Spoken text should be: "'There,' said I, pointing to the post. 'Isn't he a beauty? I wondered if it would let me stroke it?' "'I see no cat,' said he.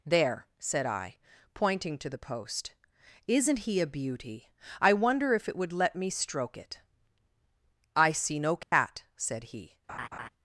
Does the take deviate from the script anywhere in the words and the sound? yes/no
yes